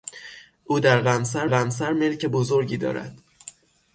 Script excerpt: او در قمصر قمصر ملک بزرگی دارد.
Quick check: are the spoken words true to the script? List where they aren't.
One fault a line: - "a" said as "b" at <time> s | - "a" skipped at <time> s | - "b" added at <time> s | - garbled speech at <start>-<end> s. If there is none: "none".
none